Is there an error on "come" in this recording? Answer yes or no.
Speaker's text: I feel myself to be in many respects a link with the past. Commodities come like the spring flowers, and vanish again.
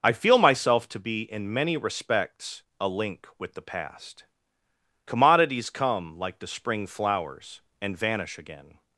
no